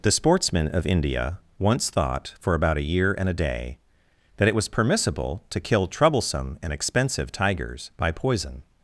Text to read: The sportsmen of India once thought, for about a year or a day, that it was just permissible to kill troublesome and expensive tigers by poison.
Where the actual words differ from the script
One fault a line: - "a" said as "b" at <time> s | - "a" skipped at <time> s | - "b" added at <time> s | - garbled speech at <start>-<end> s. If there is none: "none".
- "or" said as "and" at 3.2 s
- "just" skipped at 4.7 s